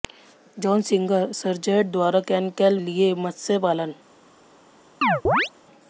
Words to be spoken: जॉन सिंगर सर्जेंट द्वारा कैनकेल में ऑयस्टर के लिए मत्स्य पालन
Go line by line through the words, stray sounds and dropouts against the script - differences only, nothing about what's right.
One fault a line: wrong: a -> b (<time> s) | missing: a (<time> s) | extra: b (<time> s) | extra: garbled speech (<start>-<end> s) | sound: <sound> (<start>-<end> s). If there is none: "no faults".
missing: में ऑयस्टर के (2.8 s)
sound: chirp (5.0-5.5 s)